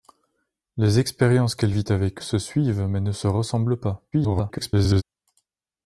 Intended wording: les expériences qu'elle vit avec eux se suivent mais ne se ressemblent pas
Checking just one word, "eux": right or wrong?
wrong